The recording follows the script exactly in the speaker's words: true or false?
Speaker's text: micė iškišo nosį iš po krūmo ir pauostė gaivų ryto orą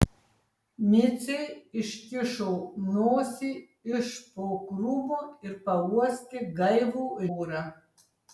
false